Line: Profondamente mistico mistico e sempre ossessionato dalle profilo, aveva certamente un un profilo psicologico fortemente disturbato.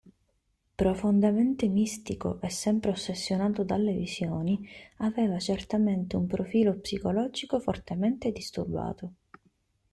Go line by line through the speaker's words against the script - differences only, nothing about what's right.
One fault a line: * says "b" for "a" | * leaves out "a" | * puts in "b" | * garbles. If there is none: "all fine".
* leaves out "mistico"
* says "visioni" for "profilo"
* leaves out "un"